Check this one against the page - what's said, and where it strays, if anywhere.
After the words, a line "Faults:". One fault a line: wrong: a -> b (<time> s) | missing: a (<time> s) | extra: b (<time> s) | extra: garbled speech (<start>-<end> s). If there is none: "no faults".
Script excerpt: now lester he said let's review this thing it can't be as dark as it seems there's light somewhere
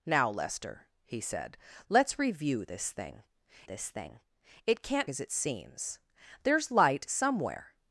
now lester he said let's review this thing this thing it can't as it seems there's light somewhere
Faults:
extra: this thing (3.7 s)
missing: be as dark (5.1 s)